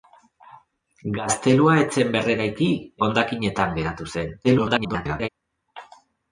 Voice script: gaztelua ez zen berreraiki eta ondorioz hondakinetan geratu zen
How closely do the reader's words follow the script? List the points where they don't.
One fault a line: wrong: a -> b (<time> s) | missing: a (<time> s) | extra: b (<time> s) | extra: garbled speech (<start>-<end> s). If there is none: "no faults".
missing: eta ondorioz (2.7 s)
extra: garbled speech (4.4-5.3 s)